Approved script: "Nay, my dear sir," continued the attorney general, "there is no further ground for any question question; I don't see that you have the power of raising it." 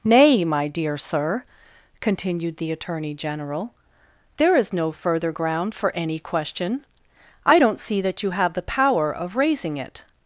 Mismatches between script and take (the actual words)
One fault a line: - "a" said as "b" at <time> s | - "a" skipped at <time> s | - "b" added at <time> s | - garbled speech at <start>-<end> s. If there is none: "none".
- "question" skipped at 6.8 s